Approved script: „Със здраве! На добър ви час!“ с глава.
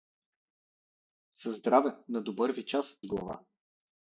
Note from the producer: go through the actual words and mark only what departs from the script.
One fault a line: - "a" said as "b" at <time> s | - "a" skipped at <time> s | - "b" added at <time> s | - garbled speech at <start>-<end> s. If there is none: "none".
none